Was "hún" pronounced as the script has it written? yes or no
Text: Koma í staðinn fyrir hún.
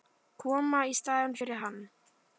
no